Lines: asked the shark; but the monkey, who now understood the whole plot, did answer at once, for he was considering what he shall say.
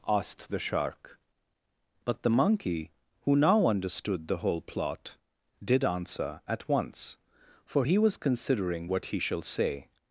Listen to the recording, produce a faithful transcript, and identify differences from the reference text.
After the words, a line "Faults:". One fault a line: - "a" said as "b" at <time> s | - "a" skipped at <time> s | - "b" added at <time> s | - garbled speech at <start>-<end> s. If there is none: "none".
asked the shark; but the monkey, who now understood the whole plot, did answer at once, for he was considering what he shall say.
Faults:
none